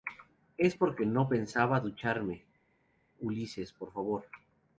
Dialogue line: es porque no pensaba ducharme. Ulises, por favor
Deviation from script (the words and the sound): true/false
false